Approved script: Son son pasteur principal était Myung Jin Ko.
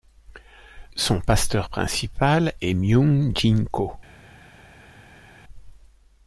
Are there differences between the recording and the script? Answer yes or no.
yes